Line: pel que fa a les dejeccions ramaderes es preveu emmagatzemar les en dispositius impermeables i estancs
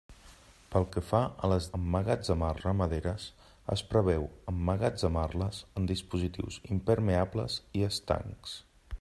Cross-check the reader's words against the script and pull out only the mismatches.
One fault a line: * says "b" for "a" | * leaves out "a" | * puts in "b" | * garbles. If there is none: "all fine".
* says "emmagatzemar" for "dejeccions"